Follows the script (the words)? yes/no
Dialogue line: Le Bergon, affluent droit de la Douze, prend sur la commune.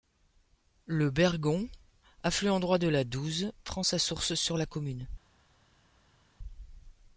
no